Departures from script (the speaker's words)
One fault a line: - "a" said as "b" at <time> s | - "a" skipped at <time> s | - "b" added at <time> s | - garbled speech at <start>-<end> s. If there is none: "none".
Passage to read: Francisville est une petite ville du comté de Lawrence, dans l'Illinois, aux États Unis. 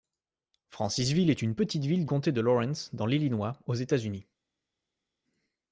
- "du" skipped at 2.0 s